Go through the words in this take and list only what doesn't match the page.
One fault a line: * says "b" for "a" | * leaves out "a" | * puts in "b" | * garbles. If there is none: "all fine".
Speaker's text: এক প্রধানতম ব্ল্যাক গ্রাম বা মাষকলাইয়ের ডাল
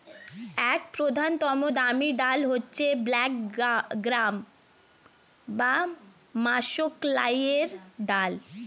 * puts in "দামি ডাল হচ্ছে"